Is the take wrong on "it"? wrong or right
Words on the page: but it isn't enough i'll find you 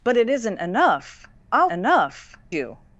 right